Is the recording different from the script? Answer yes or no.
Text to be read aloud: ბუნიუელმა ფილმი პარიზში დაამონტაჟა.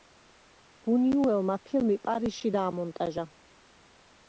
no